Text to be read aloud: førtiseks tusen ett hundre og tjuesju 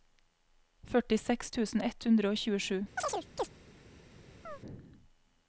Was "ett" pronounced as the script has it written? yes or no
yes